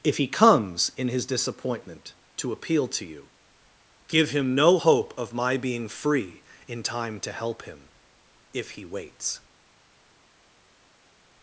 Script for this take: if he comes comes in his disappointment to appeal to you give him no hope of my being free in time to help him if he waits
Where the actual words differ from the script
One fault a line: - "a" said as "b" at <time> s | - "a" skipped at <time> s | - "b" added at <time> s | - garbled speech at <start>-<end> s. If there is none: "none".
- "comes" skipped at 0.9 s